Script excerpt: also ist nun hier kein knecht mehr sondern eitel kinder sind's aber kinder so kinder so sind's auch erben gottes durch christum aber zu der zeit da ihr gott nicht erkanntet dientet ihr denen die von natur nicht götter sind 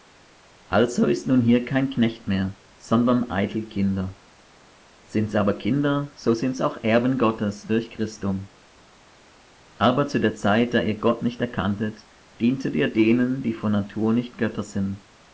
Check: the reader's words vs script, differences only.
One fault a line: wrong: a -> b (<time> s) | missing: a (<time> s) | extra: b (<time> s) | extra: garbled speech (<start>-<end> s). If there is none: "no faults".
missing: kinder so (6.3 s)